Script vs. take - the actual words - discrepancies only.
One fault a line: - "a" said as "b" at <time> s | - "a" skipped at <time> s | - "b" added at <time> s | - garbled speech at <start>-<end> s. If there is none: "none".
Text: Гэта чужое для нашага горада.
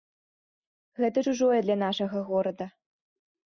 none